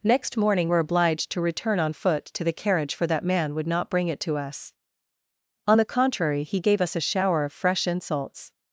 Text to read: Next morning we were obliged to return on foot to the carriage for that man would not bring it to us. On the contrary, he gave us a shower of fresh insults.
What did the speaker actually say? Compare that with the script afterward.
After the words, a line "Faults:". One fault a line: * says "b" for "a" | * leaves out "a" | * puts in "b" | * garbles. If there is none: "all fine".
Next morning were obliged to return on foot to the carriage for that man would not bring it to us. On the contrary, he gave us a shower of fresh insults.
Faults:
* leaves out "we"